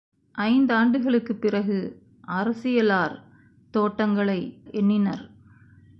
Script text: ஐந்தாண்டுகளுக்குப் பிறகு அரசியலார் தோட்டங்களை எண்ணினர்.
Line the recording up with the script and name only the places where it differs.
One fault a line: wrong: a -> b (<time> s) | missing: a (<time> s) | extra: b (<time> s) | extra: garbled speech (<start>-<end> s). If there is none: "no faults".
no faults